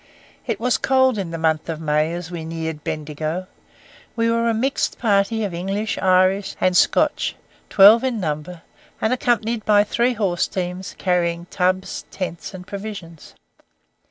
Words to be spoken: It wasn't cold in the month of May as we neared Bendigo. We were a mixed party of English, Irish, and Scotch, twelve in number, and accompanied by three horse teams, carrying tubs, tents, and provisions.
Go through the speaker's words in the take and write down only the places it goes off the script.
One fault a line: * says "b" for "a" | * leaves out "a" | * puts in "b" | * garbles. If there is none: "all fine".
* says "was" for "wasn't"